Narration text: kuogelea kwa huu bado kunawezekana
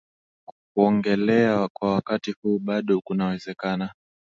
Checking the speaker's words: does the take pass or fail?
fail